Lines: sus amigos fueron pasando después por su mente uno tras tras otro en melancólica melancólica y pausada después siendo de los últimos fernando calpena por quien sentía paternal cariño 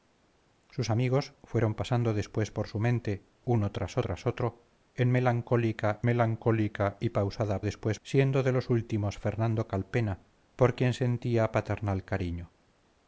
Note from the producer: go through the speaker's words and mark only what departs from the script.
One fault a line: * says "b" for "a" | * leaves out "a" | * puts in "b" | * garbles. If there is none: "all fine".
all fine